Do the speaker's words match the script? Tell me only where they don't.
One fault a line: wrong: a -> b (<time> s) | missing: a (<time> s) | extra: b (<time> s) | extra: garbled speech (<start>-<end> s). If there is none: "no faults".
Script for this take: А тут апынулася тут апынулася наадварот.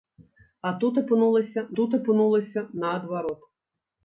no faults